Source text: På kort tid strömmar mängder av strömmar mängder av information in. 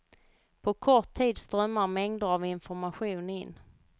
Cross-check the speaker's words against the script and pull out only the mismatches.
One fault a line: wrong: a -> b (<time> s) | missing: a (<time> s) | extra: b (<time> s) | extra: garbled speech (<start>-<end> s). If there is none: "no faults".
missing: strömmar mängder av (2.5 s)